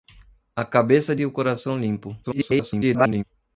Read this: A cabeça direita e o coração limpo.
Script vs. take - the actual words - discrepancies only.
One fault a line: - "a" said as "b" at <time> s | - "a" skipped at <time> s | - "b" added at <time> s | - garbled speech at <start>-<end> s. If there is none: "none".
- "direita" skipped at 1.1 s
- garbled speech at 2.2-3.2 s